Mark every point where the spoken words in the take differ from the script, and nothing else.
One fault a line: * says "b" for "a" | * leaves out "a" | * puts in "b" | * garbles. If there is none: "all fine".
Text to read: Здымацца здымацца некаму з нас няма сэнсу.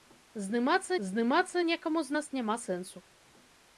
all fine